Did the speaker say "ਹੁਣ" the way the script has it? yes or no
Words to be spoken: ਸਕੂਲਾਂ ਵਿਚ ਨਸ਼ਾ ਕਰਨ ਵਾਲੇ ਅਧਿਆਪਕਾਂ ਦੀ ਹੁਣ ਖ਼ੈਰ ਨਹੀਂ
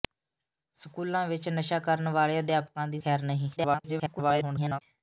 no